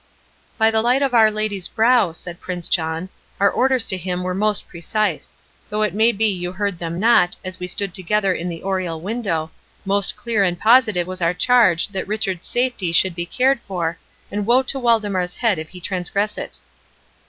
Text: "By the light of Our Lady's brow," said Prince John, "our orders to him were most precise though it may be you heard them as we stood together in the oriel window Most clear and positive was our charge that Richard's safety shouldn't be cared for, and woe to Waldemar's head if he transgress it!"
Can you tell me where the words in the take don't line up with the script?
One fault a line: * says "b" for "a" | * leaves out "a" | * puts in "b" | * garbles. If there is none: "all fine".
* puts in "not"
* says "should" for "shouldn't"